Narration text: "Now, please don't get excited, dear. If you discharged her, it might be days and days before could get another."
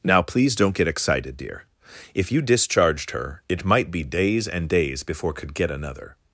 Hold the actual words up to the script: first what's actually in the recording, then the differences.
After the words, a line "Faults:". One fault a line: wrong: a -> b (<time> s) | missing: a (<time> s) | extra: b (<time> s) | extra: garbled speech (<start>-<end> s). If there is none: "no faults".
"Now, please don't get excited, dear. If you discharged her, it might be days and days before could get another."
Faults:
no faults